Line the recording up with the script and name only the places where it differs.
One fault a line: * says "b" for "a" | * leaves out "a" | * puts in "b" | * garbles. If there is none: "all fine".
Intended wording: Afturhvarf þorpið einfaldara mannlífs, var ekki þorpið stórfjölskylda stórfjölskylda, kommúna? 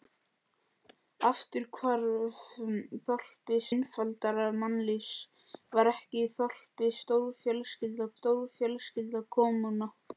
all fine